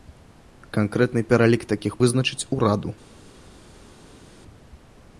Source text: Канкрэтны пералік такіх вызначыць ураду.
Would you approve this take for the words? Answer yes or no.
yes